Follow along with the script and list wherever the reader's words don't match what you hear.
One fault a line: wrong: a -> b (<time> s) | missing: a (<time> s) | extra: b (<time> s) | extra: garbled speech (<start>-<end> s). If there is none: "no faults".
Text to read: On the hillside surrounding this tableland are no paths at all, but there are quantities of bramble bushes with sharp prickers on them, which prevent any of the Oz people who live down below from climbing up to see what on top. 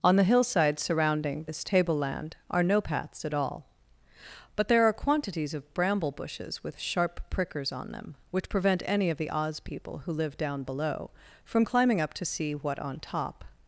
no faults